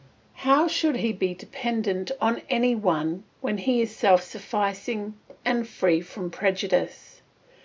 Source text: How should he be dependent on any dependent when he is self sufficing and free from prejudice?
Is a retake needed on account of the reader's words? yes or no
yes